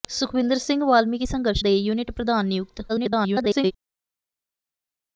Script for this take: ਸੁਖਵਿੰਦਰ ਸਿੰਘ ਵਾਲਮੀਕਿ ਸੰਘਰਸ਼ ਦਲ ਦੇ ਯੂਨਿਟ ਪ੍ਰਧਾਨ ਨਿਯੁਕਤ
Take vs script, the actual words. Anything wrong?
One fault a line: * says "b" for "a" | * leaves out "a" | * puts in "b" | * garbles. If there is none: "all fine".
* leaves out "ਦਲ"
* garbles